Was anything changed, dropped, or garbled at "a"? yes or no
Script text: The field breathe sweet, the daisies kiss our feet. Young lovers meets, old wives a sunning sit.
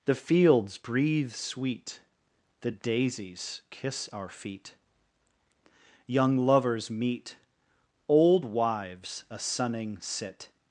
no